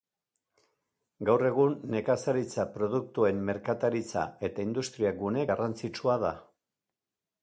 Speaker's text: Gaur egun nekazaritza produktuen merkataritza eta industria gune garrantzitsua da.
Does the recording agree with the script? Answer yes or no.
yes